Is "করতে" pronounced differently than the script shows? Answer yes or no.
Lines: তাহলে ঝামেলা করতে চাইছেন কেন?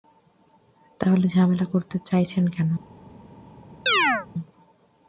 no